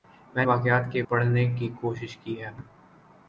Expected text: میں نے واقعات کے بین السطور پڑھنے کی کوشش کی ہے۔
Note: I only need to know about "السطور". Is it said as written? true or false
false